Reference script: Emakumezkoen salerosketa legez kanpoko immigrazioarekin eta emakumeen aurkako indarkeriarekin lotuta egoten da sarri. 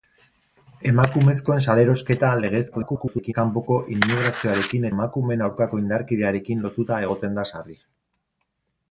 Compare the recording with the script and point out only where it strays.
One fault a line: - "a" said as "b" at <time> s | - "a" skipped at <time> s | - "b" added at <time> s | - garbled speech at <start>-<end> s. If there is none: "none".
- garbled speech at 2.7-3.3 s
- "eta" skipped at 4.9 s